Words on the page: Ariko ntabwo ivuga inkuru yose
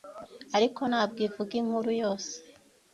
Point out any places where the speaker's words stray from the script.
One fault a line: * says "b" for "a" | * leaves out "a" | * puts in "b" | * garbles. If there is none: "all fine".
all fine